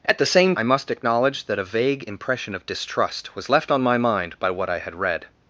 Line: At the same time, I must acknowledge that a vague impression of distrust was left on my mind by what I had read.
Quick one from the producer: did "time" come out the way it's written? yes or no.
no